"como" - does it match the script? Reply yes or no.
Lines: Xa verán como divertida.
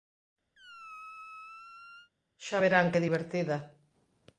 no